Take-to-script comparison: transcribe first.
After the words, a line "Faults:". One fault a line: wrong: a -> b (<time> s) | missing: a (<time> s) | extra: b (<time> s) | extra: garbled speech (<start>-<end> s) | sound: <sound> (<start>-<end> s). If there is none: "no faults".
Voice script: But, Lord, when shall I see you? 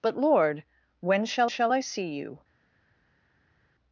But, Lord, when shall shall I see you?
Faults:
extra: shall (1.5 s)